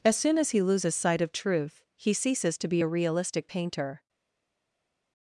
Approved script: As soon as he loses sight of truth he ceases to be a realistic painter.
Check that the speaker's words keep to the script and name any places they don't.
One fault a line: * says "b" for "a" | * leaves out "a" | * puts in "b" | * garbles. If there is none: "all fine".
all fine